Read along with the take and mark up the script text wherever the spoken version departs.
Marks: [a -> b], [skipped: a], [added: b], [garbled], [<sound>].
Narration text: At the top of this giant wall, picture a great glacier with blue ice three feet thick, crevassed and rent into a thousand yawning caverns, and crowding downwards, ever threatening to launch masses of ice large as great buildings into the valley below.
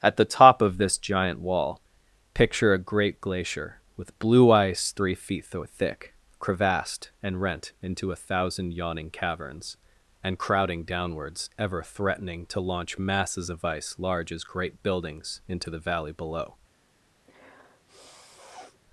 At the top of this giant wall, picture a great glacier with blue ice three feet thick, crevassed and rent into a thousand yawning caverns, and crowding downwards, ever threatening to launch masses of ice large as great buildings into the valley below. [sniff]